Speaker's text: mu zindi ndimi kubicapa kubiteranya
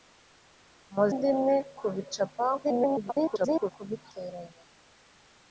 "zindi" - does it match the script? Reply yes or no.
no